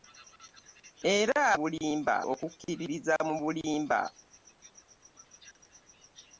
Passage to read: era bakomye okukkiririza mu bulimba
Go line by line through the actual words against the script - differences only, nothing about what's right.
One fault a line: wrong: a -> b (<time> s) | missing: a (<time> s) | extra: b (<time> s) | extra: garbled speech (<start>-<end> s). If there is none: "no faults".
wrong: bakomye -> bulimba (1.6 s)